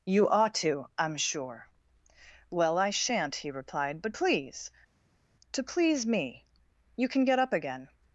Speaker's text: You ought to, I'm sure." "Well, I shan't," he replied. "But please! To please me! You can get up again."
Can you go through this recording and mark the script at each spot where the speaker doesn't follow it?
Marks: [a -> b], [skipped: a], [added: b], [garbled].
You ought to, I'm sure." "Well, I shan't," he replied. "But please! To please me! You can get up again."